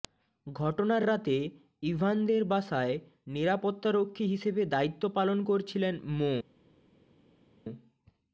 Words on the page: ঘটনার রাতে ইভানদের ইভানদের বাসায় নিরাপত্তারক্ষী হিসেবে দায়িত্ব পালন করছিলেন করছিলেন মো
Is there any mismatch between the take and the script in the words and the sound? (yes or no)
yes